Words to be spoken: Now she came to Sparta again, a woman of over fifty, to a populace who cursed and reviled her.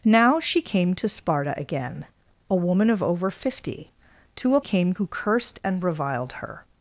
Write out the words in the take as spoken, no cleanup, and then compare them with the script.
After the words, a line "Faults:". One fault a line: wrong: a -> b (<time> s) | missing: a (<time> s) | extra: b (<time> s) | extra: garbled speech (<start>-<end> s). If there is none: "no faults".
Now she came to Sparta again, a woman of over fifty, to a came who cursed and reviled her.
Faults:
wrong: populace -> came (4.6 s)